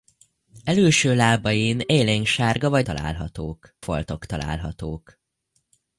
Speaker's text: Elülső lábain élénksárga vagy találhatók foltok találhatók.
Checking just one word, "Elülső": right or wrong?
right